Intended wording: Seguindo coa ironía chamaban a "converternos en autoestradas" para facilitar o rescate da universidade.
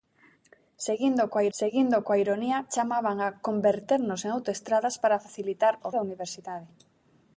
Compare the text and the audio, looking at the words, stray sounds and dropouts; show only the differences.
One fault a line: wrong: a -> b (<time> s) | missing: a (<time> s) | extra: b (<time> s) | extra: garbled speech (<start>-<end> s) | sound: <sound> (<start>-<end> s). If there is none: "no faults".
extra: seguindo coa (1.6 s)
missing: rescate (5.9 s)